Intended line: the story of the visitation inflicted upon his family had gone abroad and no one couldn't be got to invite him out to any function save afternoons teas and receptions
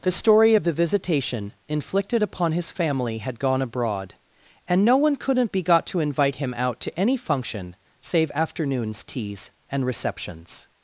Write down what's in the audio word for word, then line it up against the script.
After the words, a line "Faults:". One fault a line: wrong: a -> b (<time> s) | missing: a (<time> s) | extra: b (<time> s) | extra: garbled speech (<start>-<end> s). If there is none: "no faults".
the story of the visitation inflicted upon his family had gone abroad and no one couldn't be got to invite him out to any function save afternoons teas and receptions
Faults:
no faults